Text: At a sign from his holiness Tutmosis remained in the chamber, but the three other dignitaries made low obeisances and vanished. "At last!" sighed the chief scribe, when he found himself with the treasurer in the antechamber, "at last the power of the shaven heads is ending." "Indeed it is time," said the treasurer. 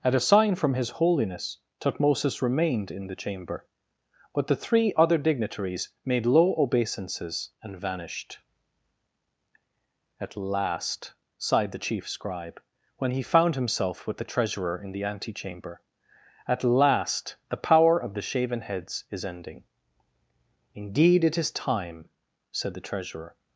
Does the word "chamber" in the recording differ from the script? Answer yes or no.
no